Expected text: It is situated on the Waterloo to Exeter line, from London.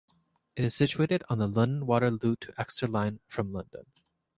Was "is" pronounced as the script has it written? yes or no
yes